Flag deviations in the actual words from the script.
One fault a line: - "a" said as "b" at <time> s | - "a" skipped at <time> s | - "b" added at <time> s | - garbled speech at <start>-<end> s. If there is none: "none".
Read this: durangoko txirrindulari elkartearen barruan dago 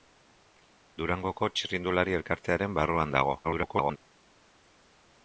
- garbled speech at 3.4-4.0 s